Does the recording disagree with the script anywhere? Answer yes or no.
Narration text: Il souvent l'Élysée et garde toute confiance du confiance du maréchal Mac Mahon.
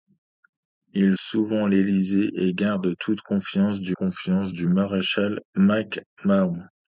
no